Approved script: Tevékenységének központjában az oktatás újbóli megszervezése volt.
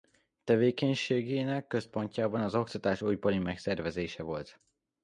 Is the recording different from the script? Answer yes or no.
no